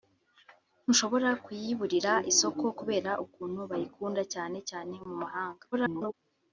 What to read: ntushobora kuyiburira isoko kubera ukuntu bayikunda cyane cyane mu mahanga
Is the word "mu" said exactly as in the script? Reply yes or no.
yes